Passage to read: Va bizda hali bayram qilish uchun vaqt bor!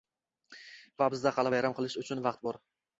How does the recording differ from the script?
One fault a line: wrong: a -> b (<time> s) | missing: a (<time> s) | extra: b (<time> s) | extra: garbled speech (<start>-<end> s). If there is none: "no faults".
no faults